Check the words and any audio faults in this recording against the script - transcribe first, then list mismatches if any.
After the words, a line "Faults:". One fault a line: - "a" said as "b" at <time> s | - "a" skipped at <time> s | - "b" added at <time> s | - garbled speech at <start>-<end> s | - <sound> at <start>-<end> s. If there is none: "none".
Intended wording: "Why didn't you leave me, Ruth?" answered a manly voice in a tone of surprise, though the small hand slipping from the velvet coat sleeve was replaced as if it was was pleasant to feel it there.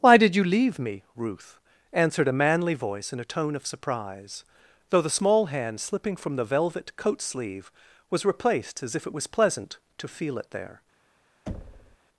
"Why did you leave me, Ruth?" answered a manly voice in a tone of surprise, though the small hand slipping from the velvet coat sleeve was replaced as if it was pleasant to feel it there.
Faults:
- "didn't" said as "did" at 0.2 s
- "was" skipped at 9.3 s
- thud at 11.5-12.0 s